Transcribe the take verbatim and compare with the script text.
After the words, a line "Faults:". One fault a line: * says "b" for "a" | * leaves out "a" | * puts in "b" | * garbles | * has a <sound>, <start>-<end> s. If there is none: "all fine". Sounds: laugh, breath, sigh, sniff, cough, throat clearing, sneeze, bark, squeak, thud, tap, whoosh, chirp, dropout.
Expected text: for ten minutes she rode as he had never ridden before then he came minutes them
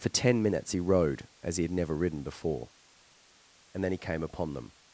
for ten minutes he rode as he had never ridden before and then he came upon them
Faults:
* says "he" for "she"
* puts in "and"
* says "upon" for "minutes"